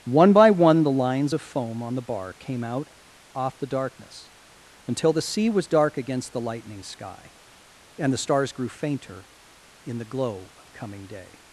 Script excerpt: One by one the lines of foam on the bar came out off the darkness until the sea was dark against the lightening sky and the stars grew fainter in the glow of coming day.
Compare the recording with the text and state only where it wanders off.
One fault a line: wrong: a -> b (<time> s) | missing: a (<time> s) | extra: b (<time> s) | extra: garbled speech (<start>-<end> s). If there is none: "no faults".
no faults